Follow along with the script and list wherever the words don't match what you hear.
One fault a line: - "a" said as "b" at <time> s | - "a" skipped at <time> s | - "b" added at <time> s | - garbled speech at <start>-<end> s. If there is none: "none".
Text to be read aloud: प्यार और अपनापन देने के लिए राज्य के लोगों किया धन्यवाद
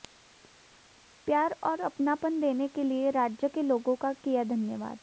- "का" added at 4.0 s